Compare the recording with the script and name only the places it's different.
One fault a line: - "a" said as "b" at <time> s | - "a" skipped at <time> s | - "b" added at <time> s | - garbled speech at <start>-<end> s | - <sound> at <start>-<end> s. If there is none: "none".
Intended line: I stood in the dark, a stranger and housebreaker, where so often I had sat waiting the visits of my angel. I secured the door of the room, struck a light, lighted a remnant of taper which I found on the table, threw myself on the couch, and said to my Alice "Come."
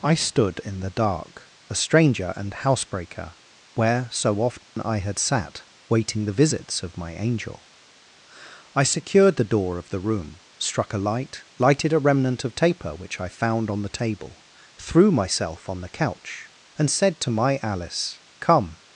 - dropout at 4.6-4.8 s